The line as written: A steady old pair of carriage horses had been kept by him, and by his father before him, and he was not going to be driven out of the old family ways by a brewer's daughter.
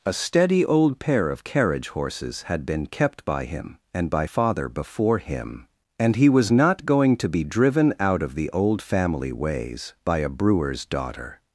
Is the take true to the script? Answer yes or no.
no